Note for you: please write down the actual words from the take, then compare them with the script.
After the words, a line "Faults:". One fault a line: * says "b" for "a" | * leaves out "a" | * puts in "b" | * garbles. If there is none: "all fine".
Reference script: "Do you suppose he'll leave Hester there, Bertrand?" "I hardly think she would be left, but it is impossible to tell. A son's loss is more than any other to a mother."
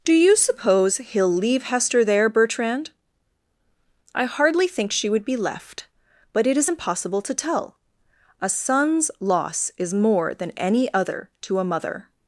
"Do you suppose he'll leave Hester there, Bertrand?" "I hardly think she would be left, but it is impossible to tell. A son's loss is more than any other to a mother."
Faults:
all fine